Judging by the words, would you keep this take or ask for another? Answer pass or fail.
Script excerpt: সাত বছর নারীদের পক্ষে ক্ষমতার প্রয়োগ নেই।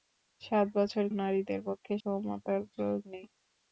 pass